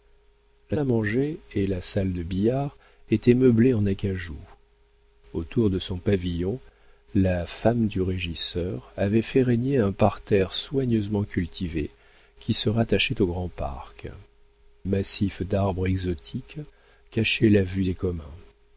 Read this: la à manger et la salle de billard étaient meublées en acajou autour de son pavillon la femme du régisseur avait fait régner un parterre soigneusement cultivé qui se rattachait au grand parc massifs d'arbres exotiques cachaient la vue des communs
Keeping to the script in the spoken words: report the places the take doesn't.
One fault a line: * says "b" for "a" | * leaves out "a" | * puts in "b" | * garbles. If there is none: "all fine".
all fine